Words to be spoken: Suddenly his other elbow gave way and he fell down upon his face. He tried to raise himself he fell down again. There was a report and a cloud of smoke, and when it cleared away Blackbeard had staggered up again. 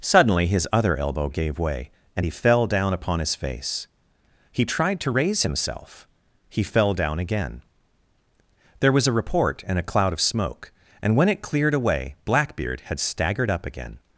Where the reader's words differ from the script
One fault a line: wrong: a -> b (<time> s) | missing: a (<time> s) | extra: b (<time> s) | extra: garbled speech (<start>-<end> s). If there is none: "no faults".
no faults